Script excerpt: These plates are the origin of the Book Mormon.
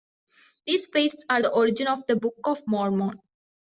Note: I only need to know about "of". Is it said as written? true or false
true